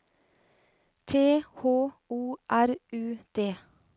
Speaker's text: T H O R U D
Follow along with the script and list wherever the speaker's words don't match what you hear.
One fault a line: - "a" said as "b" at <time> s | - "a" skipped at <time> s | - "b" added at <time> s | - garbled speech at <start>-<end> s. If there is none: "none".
none